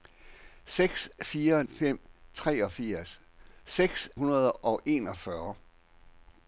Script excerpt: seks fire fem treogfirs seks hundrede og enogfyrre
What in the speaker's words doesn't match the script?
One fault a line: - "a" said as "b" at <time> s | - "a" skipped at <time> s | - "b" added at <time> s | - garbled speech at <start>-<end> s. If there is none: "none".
none